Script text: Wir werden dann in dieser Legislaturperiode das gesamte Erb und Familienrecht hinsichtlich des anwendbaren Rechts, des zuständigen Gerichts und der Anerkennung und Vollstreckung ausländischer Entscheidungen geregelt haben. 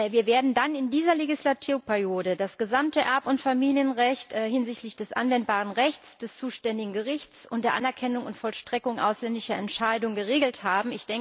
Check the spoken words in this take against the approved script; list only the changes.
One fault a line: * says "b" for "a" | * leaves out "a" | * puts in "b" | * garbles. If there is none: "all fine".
all fine